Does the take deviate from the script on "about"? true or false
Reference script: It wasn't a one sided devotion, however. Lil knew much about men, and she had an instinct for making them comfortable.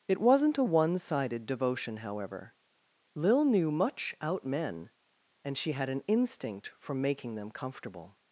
true